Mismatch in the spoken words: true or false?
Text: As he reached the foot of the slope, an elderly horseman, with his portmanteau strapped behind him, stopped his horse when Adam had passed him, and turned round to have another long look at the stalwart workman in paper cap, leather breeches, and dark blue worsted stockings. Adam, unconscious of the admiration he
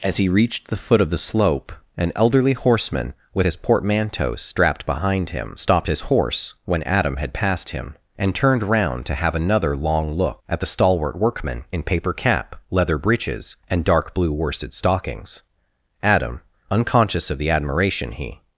false